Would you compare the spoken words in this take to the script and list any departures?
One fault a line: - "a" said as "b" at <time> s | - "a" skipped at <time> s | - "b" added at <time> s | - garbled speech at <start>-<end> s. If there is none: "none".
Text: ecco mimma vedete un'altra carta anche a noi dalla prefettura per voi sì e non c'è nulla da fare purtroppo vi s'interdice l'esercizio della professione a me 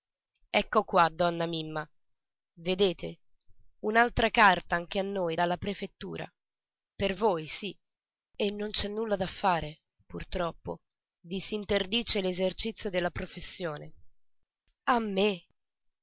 - "qua donna" added at 0.8 s